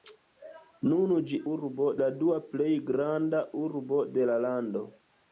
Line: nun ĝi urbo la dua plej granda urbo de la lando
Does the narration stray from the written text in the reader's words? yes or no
no